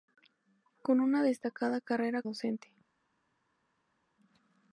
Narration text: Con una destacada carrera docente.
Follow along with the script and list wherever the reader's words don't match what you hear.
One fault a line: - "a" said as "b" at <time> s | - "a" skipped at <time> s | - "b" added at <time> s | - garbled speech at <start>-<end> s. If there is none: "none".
none